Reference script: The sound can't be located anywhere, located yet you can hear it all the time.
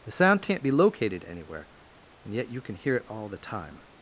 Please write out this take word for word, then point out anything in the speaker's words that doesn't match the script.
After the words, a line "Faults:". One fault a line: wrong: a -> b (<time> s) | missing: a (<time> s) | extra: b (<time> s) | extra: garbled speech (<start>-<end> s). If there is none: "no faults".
The sound can't be located anywhere, and yet you can hear it all the time.
Faults:
wrong: located -> and (2.2 s)